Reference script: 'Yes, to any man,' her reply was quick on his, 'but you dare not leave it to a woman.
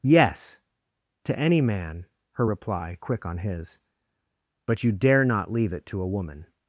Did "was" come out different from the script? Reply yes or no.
yes